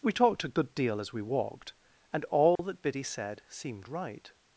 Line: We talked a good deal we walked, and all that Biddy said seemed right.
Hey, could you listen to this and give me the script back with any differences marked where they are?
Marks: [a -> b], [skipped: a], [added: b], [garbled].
We talked a good deal [added: as] we walked, and all that Biddy said seemed right.